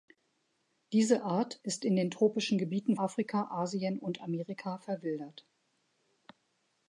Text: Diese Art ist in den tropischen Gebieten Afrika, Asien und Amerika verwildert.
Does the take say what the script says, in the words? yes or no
yes